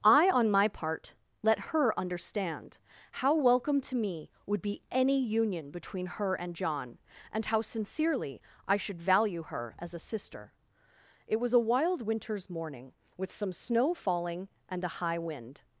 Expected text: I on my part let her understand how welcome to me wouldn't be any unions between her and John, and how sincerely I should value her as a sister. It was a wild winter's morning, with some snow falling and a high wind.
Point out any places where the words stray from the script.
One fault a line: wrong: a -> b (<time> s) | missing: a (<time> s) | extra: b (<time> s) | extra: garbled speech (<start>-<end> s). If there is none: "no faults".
wrong: wouldn't -> would (4.5 s)
wrong: unions -> union (5.2 s)